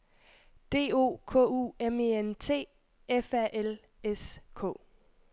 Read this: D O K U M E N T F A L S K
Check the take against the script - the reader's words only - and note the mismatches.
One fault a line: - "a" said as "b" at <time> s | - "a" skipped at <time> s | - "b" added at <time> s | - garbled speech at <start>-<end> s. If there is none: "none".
none